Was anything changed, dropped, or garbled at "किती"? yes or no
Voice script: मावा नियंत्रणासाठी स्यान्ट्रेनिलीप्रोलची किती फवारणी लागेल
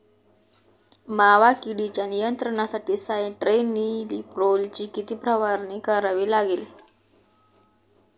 no